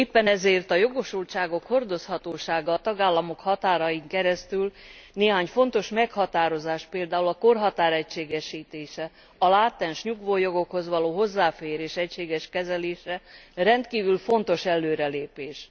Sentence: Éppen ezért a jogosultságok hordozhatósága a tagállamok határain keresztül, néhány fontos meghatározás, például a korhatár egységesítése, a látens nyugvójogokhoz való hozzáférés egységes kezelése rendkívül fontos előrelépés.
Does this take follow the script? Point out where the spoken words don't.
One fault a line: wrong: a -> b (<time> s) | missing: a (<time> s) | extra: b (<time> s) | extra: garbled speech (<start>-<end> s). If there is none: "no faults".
no faults